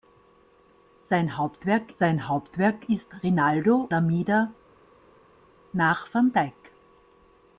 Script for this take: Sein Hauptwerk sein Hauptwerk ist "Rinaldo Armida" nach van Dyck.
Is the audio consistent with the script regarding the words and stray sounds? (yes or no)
yes